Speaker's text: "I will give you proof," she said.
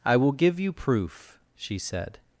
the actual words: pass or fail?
pass